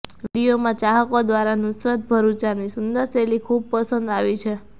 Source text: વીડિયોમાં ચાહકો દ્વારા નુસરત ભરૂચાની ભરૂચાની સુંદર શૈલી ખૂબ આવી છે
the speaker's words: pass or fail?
fail